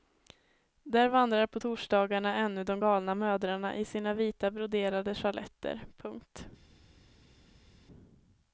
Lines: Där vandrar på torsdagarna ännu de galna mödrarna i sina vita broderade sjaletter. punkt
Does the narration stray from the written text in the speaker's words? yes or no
no